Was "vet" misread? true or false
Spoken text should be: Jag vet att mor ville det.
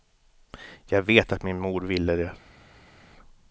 false